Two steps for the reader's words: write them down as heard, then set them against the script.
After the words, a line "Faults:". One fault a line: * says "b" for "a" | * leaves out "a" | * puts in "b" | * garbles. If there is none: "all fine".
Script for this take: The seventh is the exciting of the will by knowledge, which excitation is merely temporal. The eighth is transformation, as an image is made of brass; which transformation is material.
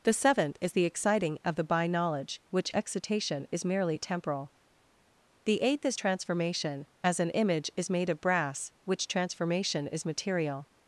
The seventh is the exciting of the by knowledge, which excitation is merely temporal. The eighth is transformation, as an image is made of brass; which transformation is material.
Faults:
* leaves out "will"